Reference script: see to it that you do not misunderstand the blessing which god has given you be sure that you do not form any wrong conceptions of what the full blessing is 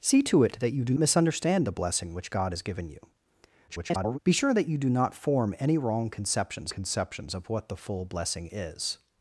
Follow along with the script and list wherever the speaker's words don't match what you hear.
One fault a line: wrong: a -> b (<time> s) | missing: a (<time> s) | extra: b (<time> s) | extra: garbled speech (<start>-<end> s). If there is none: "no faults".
missing: not (0.9 s)
extra: garbled speech (3.7-4.2 s)
extra: conceptions (6.7 s)